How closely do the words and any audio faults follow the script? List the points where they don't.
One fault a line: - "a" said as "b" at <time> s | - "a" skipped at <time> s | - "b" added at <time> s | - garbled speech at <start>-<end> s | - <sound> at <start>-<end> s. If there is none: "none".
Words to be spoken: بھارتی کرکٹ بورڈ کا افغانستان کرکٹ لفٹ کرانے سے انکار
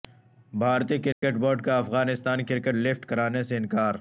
- dropout at 1.1-1.2 s